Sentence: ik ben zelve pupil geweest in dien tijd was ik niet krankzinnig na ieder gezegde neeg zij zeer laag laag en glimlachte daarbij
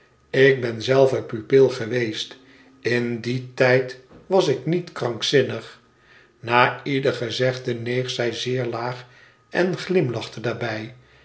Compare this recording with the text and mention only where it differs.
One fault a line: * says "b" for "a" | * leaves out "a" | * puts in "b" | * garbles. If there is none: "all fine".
* leaves out "laag"